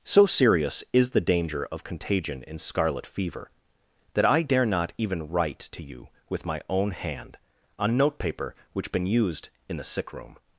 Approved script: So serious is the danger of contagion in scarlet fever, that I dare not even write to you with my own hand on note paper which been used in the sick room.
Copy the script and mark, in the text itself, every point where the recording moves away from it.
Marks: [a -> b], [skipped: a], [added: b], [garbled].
So serious is the danger of contagion in scarlet fever, that I dare not even write to you with my own hand on note paper which been used in the sick room.